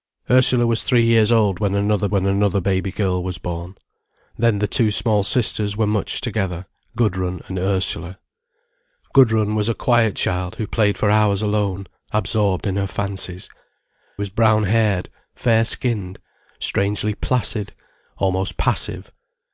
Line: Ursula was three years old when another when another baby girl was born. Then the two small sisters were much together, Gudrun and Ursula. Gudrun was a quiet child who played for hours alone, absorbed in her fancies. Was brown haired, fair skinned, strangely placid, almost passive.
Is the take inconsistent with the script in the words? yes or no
no